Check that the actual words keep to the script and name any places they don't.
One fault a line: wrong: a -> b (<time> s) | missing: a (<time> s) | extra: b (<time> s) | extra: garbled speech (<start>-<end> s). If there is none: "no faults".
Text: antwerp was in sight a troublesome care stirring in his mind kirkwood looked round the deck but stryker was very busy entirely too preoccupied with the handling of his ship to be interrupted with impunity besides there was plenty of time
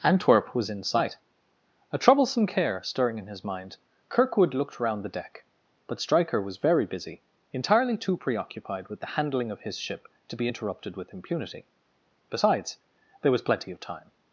no faults